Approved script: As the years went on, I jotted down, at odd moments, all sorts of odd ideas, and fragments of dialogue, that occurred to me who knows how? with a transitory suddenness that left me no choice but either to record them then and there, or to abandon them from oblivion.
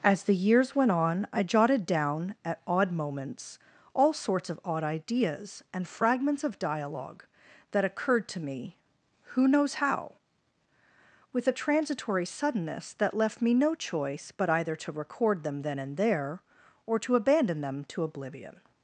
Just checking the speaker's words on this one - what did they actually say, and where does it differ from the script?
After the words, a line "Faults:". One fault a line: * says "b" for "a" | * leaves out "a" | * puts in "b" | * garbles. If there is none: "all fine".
As the years went on, I jotted down, at odd moments, all sorts of odd ideas, and fragments of dialogue, that occurred to me who knows how? with a transitory suddenness that left me no choice but either to record them then and there, or to abandon them to oblivion.
Faults:
* says "to" for "from"